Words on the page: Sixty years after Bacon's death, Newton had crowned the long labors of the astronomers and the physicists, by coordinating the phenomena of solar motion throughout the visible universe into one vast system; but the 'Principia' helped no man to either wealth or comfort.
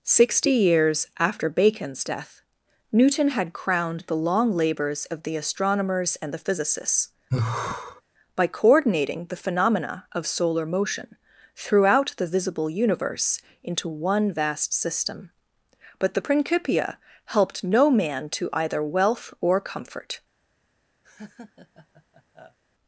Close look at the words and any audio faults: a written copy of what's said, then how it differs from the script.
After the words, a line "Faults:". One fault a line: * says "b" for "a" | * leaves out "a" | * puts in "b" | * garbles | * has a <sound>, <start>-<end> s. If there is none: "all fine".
Sixty years after Bacon's death, Newton had crowned the long labors of the astronomers and the physicists, by coordinating the phenomena of solar motion throughout the visible universe into one vast system; but the 'Principia' helped no man to either wealth or comfort.
Faults:
* has a sigh, 7.3-8.0 s
* has a laugh, 21.0-22.6 s